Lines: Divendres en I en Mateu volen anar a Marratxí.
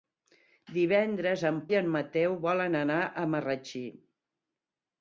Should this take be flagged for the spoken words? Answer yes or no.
no